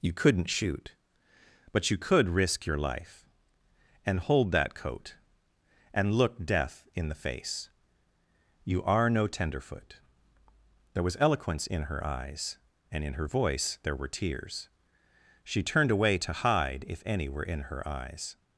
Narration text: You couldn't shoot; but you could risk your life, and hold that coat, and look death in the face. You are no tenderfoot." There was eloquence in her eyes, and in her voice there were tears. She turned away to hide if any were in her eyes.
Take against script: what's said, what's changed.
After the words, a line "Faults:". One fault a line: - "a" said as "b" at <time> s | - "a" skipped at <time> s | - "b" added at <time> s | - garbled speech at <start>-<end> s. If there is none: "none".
You couldn't shoot; but you could risk your life, and hold that coat, and look death in the face. You are no tenderfoot." There was eloquence in her eyes, and in her voice there were tears. She turned away to hide if any were in her eyes.
Faults:
none